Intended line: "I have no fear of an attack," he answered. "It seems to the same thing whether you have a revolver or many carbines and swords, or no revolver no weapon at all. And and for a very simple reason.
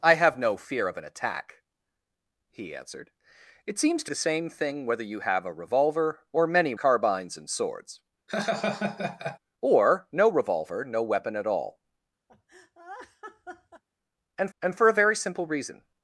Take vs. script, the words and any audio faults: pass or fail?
fail